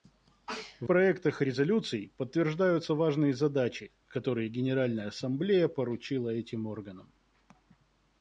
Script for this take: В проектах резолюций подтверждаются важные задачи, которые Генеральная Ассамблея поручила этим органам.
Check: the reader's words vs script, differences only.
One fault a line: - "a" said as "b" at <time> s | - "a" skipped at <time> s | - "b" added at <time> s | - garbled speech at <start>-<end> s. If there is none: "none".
none